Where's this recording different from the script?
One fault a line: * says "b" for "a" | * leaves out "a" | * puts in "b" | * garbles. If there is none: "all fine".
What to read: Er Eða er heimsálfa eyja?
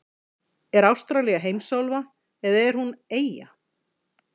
* puts in "Ástralía heimsálfa"
* says "hún" for "heimsálfa"